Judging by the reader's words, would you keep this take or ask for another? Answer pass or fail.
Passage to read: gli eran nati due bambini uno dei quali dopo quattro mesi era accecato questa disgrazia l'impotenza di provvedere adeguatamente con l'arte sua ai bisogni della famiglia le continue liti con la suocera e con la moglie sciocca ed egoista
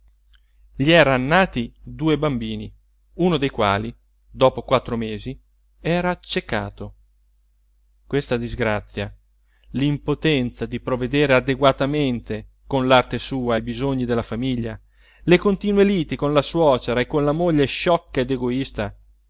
pass